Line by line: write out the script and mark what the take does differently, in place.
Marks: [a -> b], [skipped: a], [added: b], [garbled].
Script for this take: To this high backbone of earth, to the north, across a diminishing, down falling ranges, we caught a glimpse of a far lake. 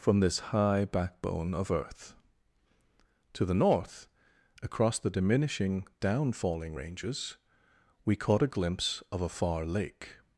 [To -> From] this high backbone of earth, to the north, across [a -> the] diminishing, down falling ranges, we caught a glimpse of a far lake.